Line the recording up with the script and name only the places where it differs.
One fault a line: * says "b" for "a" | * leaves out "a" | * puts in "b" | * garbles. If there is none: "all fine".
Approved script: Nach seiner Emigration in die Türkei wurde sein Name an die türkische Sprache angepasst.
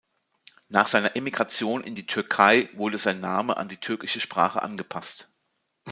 all fine